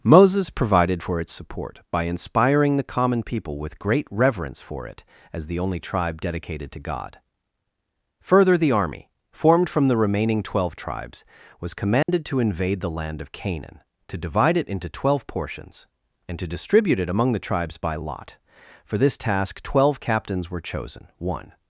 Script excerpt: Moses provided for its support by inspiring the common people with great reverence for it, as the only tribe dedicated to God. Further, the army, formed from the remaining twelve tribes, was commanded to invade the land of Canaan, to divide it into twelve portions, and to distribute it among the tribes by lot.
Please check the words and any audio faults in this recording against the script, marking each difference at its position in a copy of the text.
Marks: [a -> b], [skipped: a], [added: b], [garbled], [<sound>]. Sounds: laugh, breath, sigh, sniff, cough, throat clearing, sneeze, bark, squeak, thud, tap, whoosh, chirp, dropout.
Moses provided for its support by inspiring the common people with great reverence for it, as the only tribe dedicated to God. Further, the army, formed from the remaining twelve tribes, was commanded [dropout] to invade the land of Canaan, to divide it into twelve portions, and to distribute it among the tribes by lot. [added: For this task twelve captains were chosen one]